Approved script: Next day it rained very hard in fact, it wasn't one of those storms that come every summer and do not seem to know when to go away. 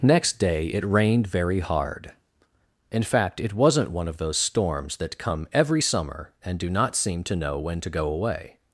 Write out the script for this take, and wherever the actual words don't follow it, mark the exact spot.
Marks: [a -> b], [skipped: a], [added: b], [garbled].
Next day it rained very hard in fact, it wasn't one of those storms that come every summer and do not seem to know when to go away.